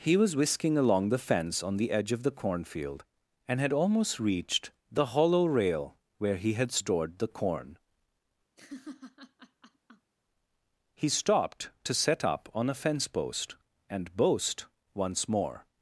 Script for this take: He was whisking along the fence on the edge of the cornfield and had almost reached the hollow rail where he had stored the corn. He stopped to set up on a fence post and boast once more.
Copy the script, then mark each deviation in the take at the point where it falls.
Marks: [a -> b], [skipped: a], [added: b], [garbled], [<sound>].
He was whisking along the fence on the edge of the cornfield and had almost reached the hollow rail where he had stored the corn. [laugh] He stopped to set up on a fence post and boast once more.